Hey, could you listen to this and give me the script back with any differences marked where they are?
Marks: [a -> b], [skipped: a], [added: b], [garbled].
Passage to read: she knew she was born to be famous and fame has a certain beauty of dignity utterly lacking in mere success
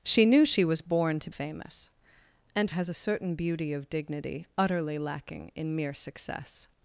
she knew she was born to [skipped: be] famous and [skipped: fame] has a certain beauty of dignity utterly lacking in mere success